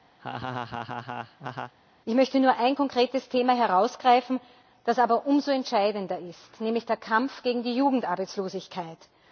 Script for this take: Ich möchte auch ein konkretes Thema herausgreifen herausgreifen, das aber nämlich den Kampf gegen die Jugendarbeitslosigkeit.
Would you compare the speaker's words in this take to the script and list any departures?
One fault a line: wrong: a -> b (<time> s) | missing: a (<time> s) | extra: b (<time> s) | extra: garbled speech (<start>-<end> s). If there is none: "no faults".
wrong: auch -> nur (2.4 s)
missing: herausgreifen (4.4 s)
extra: umso entscheidender ist (5.3 s)